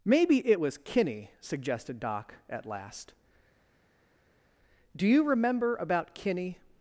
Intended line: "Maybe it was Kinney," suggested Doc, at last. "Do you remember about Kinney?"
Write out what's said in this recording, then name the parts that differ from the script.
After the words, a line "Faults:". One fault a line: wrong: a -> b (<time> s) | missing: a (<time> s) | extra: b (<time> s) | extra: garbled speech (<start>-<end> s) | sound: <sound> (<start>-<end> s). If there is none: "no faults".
"Maybe it was Kinney," suggested Doc, at last. "Do you remember about Kinney?"
Faults:
no faults